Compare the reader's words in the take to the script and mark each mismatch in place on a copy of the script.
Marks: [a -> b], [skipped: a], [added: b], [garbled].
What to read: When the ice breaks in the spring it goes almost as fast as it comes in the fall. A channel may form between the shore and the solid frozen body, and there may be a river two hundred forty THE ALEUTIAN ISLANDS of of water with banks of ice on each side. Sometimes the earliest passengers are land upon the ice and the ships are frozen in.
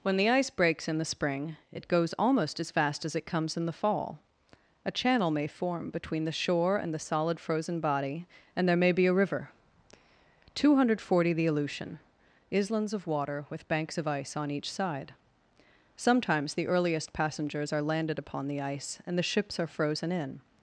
When the ice breaks in the spring it goes almost as fast as it comes in the fall. A channel may form between the shore and the solid frozen body, and there may be a river two hundred forty THE ALEUTIAN ISLANDS of [skipped: of] water with banks of ice on each side. Sometimes the earliest passengers are [land -> landed] upon the ice and the ships are frozen in.